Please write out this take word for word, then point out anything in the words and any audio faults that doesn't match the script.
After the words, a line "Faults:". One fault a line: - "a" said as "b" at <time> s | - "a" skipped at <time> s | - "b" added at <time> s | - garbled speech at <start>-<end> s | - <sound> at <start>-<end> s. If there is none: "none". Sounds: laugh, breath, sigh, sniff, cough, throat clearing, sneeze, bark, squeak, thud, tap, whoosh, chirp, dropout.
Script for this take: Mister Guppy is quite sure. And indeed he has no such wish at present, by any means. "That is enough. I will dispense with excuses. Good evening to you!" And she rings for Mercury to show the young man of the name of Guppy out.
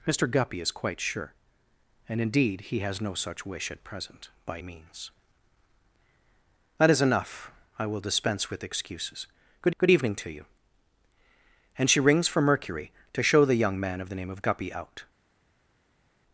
Mister Guppy is quite sure. And indeed he has no such wish at present, by means. "That is enough. I will dispense with excuses. Good good evening to you!" And she rings for Mercury to show the young man of the name of Guppy out.
Faults:
- "any" skipped at 4.6 s
- "good" added at 9.8 s